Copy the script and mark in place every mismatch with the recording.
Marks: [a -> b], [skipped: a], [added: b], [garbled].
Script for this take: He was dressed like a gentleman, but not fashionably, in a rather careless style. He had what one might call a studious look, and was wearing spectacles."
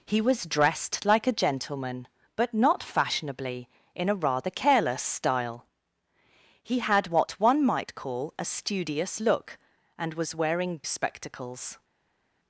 He was dressed like a gentleman, but not fashionably, in a rather careless style. He had what one might call a studious look, and was wearing spectacles."